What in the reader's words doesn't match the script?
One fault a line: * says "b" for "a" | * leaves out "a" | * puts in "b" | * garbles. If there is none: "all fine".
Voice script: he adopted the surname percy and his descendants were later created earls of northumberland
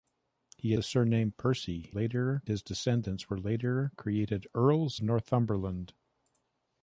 * leaves out "adopted"
* says "later" for "and"
* leaves out "of"